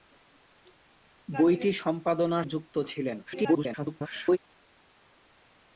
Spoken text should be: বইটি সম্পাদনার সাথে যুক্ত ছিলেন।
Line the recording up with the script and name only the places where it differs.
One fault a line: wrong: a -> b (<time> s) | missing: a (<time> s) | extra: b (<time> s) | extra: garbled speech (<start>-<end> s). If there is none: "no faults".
missing: সাথে (2.5 s)
extra: garbled speech (3.3-4.4 s)